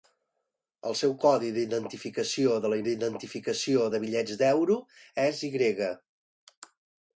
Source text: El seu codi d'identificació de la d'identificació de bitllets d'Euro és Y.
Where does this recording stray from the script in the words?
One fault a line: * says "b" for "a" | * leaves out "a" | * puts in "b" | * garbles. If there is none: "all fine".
all fine